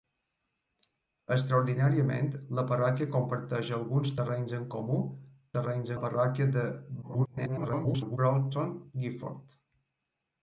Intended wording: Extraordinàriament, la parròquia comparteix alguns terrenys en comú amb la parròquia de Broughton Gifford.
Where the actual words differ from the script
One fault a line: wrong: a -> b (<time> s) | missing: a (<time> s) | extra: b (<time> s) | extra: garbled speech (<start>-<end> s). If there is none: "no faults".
wrong: amb -> terrenys (5.6 s)
extra: garbled speech (7.0-8.2 s)